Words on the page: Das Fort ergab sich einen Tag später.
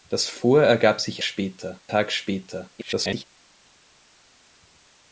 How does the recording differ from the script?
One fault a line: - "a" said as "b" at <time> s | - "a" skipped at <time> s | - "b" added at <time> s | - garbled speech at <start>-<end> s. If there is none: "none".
- "einen" said as "später" at 1.2 s
- garbled speech at 2.8-3.2 s